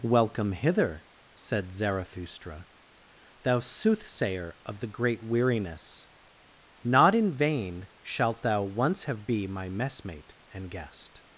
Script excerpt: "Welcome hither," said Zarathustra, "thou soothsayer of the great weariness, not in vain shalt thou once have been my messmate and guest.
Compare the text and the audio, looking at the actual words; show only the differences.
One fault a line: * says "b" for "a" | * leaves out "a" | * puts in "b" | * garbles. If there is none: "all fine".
* says "be" for "been"